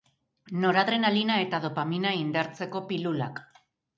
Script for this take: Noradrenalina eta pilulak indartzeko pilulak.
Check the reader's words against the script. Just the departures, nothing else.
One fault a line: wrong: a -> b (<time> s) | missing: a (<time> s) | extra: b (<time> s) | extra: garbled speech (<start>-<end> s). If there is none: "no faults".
wrong: pilulak -> dopamina (1.7 s)